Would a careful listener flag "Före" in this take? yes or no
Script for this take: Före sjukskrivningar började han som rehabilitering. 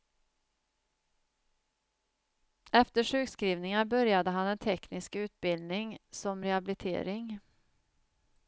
yes